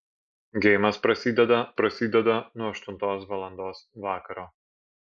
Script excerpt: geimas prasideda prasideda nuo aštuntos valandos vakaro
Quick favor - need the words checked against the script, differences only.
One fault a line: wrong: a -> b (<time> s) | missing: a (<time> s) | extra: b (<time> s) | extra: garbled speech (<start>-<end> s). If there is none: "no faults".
no faults